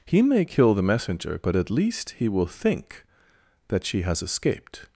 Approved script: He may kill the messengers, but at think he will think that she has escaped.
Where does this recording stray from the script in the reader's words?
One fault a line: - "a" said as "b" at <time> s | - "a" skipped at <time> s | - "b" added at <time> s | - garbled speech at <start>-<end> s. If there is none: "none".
- "messengers" said as "messenger" at 0.8 s
- "think" said as "least" at 1.7 s